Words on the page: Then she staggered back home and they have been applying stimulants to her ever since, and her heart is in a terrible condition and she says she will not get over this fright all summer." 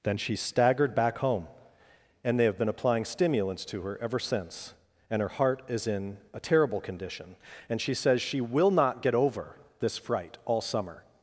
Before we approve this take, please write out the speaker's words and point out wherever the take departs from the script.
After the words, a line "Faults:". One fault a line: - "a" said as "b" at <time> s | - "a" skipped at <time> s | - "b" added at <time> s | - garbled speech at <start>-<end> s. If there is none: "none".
Then she staggered back home and they have been applying stimulants to her ever since, and her heart is in a terrible condition and she says she will not get over this fright all summer."
Faults:
none